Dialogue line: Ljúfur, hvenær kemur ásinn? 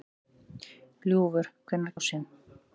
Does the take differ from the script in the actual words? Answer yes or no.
yes